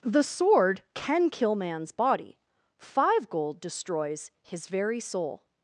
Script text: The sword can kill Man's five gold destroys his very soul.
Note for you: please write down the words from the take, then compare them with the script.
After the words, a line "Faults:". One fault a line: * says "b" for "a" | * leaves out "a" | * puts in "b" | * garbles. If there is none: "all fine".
The sword can kill Man's body five gold destroys his very soul.
Faults:
* puts in "body"